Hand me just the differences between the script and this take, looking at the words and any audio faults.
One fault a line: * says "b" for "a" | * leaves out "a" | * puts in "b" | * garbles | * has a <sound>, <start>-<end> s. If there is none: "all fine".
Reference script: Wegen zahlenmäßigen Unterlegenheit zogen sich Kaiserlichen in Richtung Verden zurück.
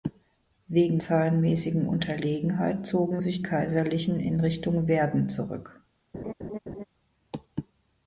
* has a laugh, 6.1-6.8 s